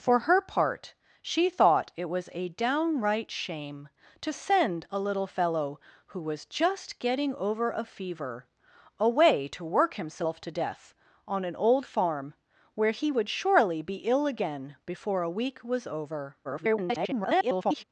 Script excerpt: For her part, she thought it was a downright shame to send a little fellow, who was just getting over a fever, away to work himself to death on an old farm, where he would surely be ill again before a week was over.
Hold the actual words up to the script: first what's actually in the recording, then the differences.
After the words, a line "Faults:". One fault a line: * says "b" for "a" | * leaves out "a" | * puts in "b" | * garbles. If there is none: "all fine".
For her part, she thought it was a downright shame to send a little fellow, who was just getting over a fever, away to work himself to death on an old farm, where he would surely be ill again before a week was over. [garbled]
Faults:
* garbles